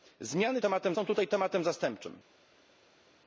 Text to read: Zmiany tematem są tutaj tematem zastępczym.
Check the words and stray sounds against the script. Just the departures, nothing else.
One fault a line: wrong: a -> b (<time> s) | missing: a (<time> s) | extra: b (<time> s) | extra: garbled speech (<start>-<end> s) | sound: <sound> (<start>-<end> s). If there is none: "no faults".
no faults